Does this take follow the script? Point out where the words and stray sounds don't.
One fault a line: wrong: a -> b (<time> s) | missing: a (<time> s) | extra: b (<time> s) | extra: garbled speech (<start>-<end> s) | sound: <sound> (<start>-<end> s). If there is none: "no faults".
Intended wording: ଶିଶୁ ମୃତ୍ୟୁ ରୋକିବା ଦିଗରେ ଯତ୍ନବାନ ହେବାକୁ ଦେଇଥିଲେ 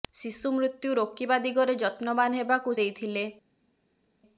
no faults